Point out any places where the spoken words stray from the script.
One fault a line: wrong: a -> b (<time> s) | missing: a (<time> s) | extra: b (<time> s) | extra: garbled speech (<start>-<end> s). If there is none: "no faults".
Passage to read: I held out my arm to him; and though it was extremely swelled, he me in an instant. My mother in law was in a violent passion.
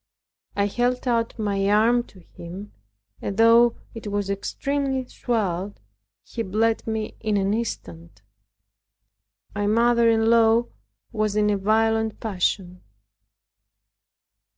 extra: bled (6.4 s)